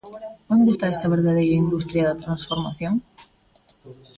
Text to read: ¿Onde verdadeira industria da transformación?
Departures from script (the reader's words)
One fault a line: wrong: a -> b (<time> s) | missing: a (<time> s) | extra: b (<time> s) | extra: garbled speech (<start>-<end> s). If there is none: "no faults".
extra: está esa (0.7 s)